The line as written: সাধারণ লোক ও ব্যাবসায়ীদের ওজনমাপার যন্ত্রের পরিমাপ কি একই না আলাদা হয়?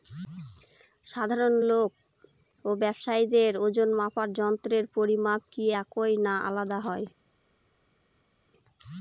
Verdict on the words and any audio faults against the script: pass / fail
pass